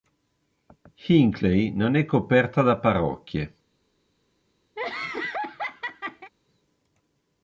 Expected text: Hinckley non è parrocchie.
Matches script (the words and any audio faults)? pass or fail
fail